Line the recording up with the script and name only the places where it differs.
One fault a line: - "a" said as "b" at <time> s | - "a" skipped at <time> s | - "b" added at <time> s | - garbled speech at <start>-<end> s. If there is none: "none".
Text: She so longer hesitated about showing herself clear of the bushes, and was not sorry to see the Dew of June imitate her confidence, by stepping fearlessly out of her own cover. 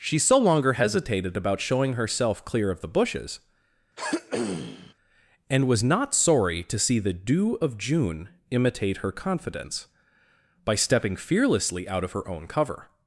none